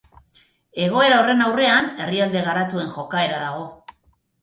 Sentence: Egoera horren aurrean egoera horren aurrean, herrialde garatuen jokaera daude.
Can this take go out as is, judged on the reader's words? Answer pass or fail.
fail